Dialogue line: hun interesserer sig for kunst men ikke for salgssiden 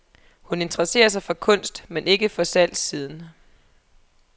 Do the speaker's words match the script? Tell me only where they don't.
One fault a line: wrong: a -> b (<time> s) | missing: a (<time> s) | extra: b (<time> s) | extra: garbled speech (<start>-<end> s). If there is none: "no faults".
no faults